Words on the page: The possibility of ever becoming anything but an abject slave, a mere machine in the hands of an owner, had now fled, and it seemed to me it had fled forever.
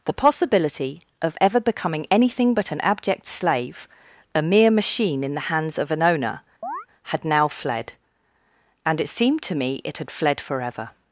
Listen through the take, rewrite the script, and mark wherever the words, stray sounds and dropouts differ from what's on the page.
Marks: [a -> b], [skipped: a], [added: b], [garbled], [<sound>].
The possibility of ever becoming anything but an abject slave, a mere machine in the hands of an owner, [chirp] had now fled, and it seemed to me it had fled forever.